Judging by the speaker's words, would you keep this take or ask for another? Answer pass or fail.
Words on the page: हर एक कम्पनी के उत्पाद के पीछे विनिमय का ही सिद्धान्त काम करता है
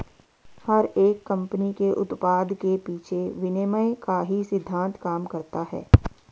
pass